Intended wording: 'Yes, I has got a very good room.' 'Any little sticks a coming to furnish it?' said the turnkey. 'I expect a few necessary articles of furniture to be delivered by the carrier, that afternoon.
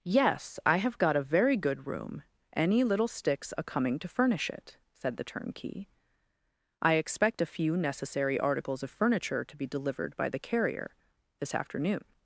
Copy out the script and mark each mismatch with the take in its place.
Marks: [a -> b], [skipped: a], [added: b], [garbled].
'Yes, I [has -> have] got a very good room.' 'Any little sticks a coming to furnish it?' said the turnkey. 'I expect a few necessary articles of furniture to be delivered by the carrier, [that -> this] afternoon.